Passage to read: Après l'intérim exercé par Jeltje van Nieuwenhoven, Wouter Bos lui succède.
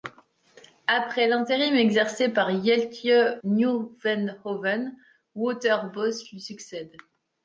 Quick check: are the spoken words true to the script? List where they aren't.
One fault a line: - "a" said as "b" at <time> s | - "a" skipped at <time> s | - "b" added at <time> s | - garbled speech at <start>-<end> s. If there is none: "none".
- "van" skipped at 3.4 s